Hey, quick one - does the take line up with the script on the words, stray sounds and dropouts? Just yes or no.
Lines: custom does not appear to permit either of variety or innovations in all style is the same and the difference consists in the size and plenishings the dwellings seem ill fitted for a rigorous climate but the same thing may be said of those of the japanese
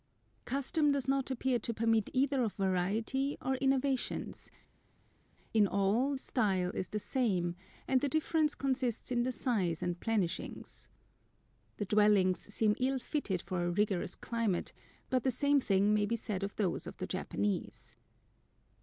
yes